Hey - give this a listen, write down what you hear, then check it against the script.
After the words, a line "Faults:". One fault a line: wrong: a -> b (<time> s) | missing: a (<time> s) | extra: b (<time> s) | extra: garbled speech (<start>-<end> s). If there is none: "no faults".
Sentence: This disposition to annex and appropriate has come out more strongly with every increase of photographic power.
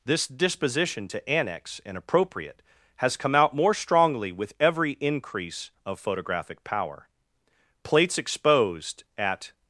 This disposition to annex and appropriate has come out more strongly with every increase of photographic power. Plates exposed at
Faults:
extra: Plates exposed at (7.8 s)